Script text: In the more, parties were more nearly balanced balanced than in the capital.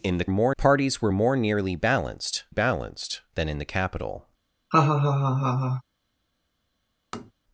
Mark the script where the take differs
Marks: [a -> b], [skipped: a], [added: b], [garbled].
In the more, parties were more nearly balanced balanced than in the capital.